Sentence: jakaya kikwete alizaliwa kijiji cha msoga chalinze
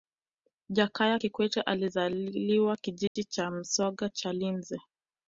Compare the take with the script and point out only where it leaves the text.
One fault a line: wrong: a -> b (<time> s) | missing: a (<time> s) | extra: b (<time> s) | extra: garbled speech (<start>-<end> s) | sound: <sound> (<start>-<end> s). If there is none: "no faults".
sound: dropout (3.1-3.2 s)